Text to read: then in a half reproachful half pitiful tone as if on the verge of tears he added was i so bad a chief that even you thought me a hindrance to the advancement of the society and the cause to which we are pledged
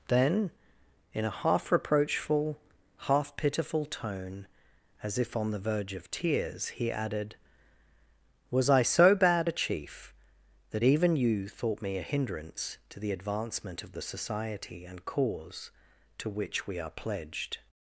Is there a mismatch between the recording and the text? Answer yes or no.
yes